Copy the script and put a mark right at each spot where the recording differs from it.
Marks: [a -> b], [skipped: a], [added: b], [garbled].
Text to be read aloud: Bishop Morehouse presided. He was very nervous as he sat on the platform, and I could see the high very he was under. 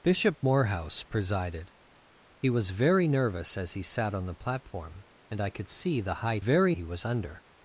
Bishop Morehouse presided. He was very nervous as he sat on the platform, and I could see the high very he was under.